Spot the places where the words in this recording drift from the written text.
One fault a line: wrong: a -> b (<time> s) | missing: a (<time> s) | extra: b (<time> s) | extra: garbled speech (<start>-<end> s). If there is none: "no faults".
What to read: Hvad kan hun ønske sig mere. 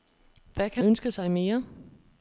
missing: hun (0.8 s)